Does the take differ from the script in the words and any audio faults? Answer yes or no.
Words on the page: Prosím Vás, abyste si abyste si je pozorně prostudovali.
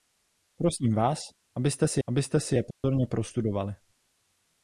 yes